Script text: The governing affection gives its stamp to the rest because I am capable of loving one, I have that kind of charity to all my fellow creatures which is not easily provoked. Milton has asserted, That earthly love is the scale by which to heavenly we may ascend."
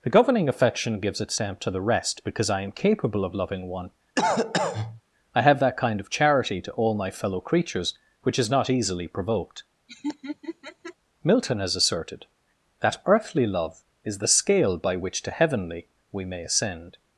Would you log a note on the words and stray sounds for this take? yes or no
yes